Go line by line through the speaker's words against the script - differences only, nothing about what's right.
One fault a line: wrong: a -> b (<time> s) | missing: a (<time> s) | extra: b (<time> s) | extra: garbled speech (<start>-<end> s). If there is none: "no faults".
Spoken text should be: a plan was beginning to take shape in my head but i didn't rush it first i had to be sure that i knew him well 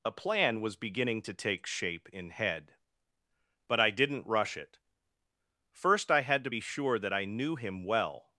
missing: my (2.3 s)